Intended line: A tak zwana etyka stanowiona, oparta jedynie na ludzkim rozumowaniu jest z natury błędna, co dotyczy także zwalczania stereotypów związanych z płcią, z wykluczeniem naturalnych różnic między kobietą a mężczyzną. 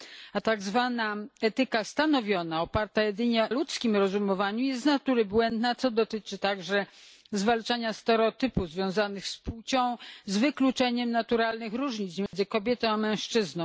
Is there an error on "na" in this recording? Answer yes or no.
yes